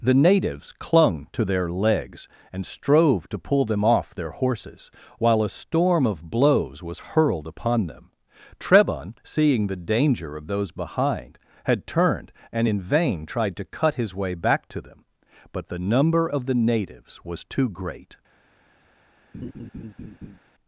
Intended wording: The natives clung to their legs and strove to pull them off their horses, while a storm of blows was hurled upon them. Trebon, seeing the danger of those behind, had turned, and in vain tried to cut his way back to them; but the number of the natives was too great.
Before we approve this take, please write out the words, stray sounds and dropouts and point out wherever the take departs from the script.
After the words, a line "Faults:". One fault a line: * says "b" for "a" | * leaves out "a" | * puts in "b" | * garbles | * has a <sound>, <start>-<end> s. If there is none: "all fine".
The natives clung to their legs and strove to pull them off their horses, while a storm of blows was hurled upon them. Trebon, seeing the danger of those behind, had turned, and in vain tried to cut his way back to them; but the number of the natives was too great.
Faults:
* has a laugh, 19.3-20.4 s